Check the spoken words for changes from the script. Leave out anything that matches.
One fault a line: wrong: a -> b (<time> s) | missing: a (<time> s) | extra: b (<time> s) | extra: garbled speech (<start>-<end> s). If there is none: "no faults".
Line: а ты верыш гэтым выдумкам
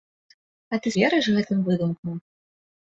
no faults